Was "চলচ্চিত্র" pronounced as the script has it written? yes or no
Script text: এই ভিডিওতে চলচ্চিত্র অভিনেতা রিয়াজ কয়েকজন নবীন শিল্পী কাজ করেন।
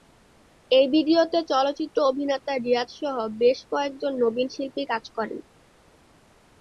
yes